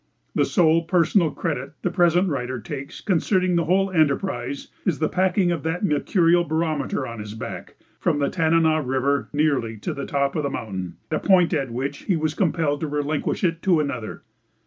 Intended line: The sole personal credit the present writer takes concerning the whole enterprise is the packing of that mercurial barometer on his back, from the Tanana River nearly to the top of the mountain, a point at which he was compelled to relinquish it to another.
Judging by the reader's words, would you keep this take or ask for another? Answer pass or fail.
pass